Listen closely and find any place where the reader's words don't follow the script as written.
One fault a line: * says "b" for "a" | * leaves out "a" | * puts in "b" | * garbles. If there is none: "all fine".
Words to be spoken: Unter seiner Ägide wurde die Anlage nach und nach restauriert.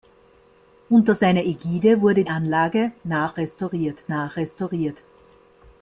* leaves out "die"
* says "restauriert" for "und"